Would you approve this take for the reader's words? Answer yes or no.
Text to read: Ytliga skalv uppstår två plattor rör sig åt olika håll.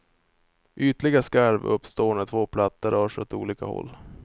no